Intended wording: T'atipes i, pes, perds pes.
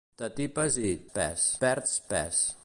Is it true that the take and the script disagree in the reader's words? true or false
false